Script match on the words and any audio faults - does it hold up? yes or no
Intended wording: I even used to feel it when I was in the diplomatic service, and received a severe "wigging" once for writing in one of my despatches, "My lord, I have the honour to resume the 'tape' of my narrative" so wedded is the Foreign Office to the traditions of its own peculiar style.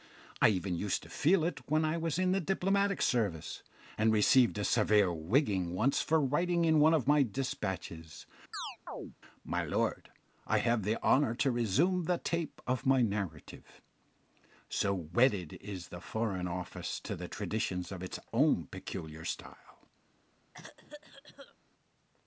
no